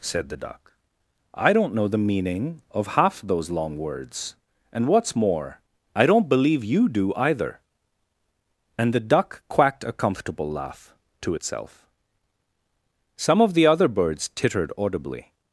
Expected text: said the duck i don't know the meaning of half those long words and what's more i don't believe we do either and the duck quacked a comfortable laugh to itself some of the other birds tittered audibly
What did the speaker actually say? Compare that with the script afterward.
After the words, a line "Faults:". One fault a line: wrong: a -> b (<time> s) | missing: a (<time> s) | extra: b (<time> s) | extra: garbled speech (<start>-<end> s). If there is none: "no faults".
said the duck i don't know the meaning of half those long words and what's more i don't believe you do either and the duck quacked a comfortable laugh to itself some of the other birds tittered audibly
Faults:
wrong: we -> you (6.6 s)